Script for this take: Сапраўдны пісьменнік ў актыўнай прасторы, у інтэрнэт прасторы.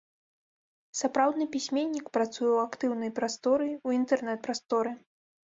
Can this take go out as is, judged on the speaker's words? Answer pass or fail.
fail